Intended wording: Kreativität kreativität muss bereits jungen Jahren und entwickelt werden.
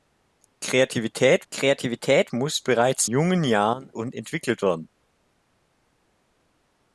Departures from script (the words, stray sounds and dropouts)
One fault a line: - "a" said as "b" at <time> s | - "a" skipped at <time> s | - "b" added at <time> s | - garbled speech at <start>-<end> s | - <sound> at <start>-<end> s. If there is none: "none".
none